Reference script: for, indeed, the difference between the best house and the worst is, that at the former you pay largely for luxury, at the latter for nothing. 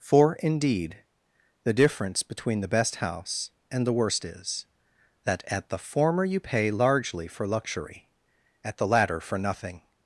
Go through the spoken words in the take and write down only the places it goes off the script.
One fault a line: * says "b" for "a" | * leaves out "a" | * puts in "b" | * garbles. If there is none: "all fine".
all fine